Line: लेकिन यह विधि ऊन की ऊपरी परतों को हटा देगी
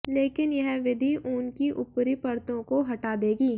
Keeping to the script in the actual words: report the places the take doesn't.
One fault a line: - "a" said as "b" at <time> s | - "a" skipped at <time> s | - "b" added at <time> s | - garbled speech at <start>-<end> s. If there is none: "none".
none